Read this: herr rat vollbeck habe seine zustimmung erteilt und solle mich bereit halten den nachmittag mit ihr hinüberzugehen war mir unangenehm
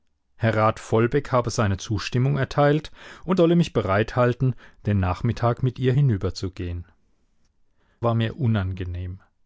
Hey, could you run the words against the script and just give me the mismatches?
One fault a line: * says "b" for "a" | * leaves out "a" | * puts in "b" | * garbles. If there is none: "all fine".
all fine